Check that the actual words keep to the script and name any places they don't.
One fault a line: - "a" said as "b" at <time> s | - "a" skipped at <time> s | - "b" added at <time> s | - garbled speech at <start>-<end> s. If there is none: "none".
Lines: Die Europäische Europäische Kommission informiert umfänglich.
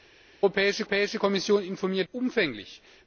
none